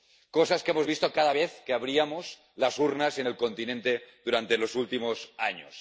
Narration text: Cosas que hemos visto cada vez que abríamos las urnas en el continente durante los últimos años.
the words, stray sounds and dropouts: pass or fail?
pass